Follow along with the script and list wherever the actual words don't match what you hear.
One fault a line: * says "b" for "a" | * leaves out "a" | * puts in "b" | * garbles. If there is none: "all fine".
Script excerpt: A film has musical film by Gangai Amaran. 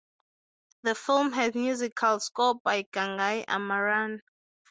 * says "The" for "A"
* says "score" for "film"